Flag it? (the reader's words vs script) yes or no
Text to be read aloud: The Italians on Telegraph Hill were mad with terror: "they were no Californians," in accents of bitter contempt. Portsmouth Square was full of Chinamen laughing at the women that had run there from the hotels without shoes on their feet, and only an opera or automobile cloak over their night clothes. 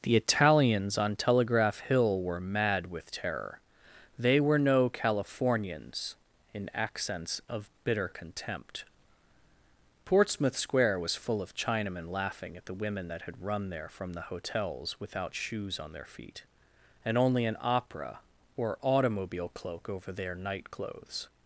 no